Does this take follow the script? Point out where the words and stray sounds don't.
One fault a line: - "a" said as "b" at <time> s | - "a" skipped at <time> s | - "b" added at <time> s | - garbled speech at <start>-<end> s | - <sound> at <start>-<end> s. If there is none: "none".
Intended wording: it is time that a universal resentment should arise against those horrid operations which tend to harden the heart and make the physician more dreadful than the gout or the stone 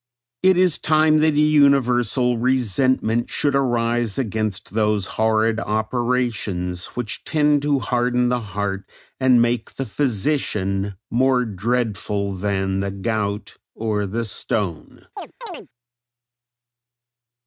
- chirp at 15.2-15.7 s